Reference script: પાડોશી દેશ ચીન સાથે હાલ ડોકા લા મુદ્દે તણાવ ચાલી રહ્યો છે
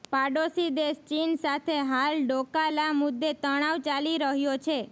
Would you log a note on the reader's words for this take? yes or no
no